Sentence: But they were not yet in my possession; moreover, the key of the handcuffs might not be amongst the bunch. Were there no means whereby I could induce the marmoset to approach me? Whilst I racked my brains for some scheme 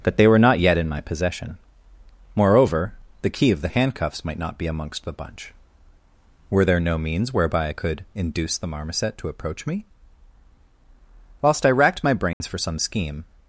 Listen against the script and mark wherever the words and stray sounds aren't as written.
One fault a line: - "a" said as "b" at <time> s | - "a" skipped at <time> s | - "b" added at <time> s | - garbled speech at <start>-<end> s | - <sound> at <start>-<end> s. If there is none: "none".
- dropout at 12.3-12.4 s